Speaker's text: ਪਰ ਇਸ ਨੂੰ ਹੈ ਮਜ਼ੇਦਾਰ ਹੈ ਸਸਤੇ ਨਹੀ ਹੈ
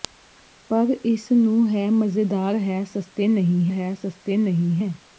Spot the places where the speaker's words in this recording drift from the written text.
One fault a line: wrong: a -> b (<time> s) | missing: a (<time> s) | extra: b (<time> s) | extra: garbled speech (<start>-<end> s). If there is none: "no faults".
extra: ਸਸਤੇ ਨਹੀ ਹੈ (3.9 s)